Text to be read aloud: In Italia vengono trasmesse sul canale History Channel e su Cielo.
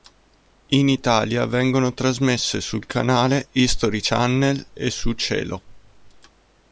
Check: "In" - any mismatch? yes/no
no